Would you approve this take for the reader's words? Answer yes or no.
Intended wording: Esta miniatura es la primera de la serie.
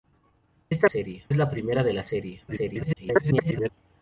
no